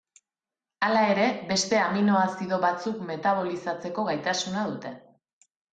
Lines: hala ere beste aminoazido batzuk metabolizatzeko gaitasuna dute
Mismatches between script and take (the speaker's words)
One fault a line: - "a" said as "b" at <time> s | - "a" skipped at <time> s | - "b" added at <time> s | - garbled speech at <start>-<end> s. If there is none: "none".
none